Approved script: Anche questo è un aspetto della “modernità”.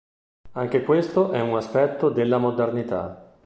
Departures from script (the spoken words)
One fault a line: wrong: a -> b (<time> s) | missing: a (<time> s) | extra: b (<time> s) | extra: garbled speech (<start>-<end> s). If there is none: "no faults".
no faults